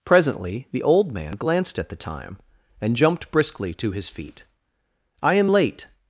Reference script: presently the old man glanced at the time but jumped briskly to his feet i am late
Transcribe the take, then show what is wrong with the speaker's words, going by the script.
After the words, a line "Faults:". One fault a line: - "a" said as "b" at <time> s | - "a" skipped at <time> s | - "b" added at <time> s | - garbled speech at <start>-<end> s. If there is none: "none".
presently the old man glanced at the time and jumped briskly to his feet i am late
Faults:
- "but" said as "and" at 2.8 s